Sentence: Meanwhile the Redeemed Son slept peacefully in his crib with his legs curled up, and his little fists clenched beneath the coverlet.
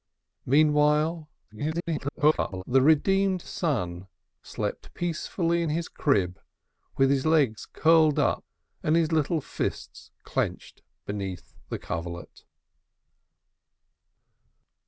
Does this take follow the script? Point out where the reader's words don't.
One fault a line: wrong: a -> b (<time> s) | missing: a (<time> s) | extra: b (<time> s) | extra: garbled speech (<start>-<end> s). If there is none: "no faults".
extra: garbled speech (1.5-2.6 s)